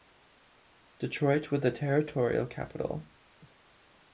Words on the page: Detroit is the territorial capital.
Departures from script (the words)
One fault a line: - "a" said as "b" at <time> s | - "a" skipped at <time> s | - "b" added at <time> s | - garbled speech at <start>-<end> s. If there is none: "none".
- "is" said as "was" at 1.5 s